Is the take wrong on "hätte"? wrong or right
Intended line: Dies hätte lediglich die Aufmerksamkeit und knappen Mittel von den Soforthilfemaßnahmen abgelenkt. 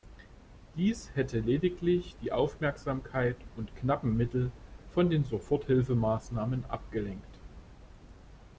right